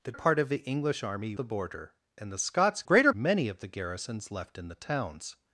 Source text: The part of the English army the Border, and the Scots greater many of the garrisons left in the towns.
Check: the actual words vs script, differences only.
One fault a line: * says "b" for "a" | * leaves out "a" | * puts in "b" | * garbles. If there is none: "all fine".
all fine